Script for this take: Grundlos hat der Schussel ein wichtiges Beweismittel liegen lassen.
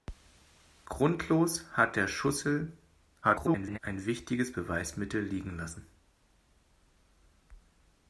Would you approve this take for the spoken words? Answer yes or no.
no